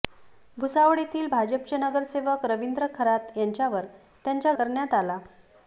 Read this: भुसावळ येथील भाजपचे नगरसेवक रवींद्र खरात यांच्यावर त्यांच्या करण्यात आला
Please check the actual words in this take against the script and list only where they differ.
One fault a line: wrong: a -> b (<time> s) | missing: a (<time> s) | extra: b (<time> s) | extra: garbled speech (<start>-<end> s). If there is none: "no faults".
no faults